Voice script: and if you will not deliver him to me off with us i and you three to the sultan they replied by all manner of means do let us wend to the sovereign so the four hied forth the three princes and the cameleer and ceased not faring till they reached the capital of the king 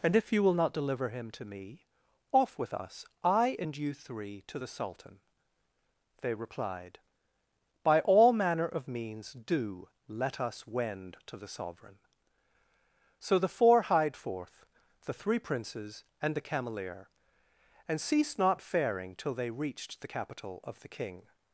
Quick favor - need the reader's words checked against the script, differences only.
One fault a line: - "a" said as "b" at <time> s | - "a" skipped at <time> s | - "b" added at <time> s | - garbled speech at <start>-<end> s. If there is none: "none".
none